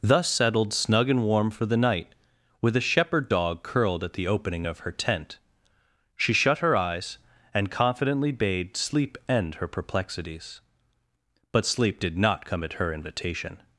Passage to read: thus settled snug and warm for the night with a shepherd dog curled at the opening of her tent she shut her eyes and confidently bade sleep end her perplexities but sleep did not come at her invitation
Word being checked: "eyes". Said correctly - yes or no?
yes